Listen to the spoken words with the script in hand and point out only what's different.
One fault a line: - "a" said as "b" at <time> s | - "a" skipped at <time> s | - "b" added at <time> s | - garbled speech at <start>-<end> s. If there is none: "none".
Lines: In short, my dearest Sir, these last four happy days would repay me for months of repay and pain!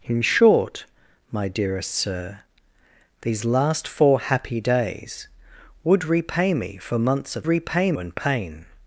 none